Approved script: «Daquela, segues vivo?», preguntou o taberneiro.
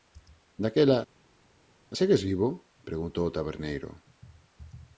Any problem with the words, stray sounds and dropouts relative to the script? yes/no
no